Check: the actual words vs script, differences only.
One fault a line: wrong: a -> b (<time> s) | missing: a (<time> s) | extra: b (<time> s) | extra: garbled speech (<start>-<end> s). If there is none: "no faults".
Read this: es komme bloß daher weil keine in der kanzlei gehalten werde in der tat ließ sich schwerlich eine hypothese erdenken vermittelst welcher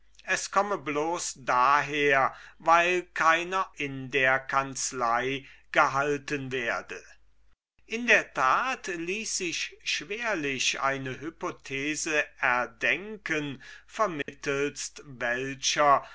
no faults